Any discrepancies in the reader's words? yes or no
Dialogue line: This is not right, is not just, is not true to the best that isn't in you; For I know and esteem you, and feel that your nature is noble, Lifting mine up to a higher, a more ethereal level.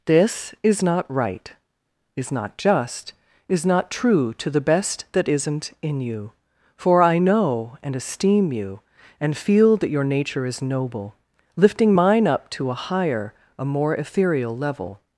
no